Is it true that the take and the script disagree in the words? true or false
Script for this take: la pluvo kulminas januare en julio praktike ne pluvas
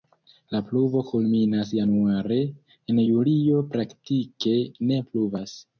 false